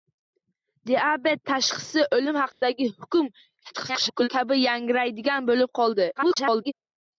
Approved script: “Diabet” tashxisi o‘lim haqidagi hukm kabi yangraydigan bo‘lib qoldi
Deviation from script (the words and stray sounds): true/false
true